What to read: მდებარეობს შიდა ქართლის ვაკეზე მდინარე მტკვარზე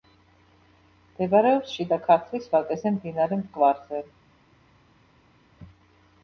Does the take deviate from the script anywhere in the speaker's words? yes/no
no